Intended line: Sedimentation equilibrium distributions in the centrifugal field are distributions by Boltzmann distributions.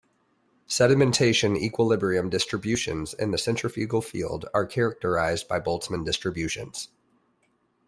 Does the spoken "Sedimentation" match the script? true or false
true